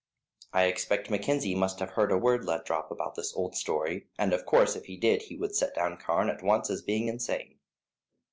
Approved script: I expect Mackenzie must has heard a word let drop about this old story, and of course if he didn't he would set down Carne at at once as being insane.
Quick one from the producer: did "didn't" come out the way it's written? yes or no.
no